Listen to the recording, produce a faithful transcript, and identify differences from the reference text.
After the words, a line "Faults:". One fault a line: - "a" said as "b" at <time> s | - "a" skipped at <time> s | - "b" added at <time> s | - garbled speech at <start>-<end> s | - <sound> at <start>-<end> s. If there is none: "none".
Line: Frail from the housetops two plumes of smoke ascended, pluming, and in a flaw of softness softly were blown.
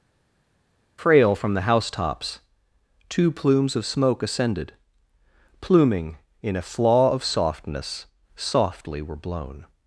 Frail from the housetops two plumes of smoke ascended, pluming, in a flaw of softness softly were blown.
Faults:
- "and" skipped at 6.2 s